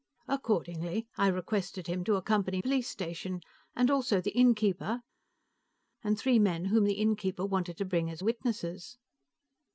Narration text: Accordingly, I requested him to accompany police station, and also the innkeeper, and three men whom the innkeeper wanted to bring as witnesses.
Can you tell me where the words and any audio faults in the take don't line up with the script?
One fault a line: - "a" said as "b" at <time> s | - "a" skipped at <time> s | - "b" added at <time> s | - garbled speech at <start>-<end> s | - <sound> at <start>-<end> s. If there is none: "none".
none